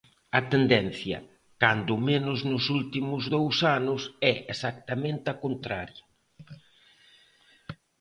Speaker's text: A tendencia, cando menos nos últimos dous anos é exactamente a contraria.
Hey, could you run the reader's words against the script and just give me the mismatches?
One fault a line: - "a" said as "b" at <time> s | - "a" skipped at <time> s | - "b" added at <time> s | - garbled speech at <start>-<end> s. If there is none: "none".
none